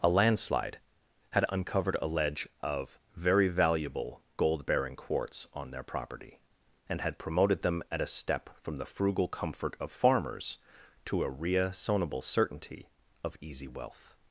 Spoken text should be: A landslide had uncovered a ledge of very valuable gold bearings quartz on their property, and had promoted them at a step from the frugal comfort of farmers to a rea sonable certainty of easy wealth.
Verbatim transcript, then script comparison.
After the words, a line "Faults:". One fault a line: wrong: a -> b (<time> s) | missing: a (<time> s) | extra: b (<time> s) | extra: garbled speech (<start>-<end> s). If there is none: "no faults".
A landslide had uncovered a ledge of very valuable gold bearing quartz on their property, and had promoted them at a step from the frugal comfort of farmers to a rea sonable certainty of easy wealth.
Faults:
wrong: bearings -> bearing (4.7 s)